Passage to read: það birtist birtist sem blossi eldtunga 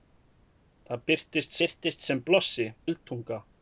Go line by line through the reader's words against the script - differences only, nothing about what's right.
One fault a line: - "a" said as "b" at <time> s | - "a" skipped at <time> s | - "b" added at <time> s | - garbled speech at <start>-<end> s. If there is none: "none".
none